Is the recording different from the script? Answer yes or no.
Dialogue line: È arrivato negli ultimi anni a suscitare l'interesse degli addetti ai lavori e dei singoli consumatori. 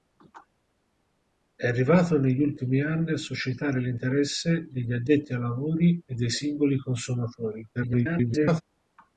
yes